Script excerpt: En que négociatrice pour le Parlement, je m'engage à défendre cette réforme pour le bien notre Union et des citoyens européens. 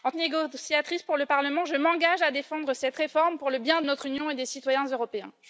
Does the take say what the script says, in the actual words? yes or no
yes